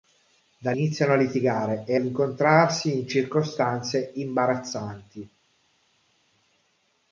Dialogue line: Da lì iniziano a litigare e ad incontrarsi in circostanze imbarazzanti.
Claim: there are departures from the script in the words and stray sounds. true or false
true